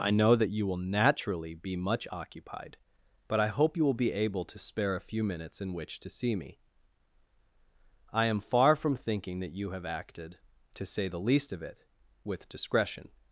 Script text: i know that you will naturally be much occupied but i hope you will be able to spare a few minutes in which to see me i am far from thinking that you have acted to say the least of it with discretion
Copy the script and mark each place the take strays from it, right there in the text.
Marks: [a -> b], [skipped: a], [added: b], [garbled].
i know that you will naturally be much occupied but i hope you will be able to spare a few minutes in which to see me i am far from thinking that you have acted to say the least of it with discretion